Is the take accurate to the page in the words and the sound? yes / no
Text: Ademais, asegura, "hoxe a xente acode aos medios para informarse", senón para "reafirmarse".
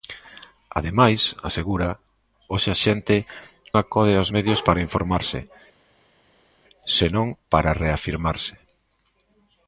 yes